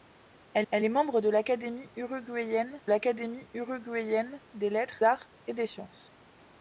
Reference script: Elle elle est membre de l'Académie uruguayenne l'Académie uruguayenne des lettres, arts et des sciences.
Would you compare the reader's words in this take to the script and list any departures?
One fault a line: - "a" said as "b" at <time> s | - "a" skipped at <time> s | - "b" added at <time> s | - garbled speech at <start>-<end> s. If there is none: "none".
none